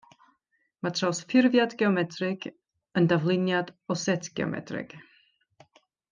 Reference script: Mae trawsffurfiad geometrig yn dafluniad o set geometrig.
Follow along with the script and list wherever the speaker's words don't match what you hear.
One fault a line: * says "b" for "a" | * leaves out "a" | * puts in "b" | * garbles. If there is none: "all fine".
all fine